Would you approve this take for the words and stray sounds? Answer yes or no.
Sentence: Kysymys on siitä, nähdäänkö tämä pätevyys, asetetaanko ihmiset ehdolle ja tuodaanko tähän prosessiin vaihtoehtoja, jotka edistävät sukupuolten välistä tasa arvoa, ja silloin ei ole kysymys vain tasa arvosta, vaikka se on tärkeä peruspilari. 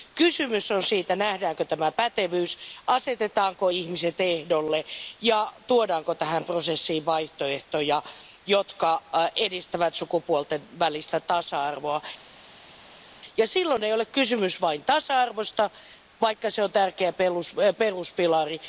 yes